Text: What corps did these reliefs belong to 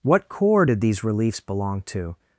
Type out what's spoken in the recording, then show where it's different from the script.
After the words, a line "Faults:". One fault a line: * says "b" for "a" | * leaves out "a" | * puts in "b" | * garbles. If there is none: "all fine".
What corps did these reliefs belong to
Faults:
all fine